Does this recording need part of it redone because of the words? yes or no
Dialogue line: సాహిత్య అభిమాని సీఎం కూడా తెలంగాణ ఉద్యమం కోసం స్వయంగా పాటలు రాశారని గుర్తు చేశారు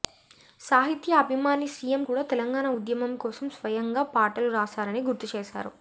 no